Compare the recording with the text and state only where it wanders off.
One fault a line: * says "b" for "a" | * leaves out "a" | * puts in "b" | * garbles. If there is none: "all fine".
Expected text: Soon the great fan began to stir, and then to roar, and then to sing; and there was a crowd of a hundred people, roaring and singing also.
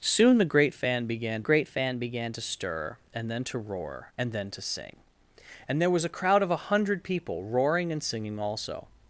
* puts in "great fan began"